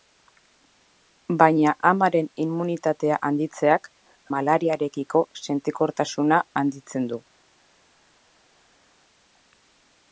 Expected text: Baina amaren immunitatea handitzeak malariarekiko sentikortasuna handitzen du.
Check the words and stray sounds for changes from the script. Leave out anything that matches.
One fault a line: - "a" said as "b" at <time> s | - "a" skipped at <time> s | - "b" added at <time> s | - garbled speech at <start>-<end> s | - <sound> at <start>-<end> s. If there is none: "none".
none